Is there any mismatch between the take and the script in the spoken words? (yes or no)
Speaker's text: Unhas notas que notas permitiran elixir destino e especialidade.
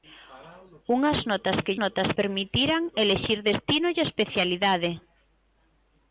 no